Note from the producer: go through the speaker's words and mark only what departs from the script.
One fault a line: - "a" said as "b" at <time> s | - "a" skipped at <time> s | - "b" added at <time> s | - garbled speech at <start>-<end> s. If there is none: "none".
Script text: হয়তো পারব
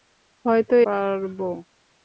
none